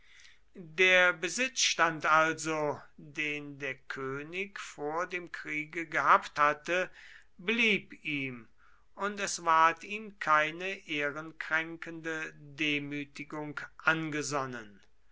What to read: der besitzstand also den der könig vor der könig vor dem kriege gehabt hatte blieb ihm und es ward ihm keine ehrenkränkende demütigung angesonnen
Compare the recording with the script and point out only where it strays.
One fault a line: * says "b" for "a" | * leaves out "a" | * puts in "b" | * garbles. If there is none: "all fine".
* leaves out "der könig vor"